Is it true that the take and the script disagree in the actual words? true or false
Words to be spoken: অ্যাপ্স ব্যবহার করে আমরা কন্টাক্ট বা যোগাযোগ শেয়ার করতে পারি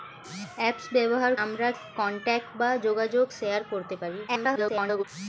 true